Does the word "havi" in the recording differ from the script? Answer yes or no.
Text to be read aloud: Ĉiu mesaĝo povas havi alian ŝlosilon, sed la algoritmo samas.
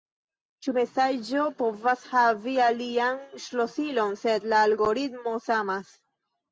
no